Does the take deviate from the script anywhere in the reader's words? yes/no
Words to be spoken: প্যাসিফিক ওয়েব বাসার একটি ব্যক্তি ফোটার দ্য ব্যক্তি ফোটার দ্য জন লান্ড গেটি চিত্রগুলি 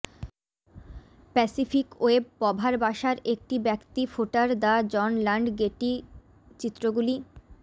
yes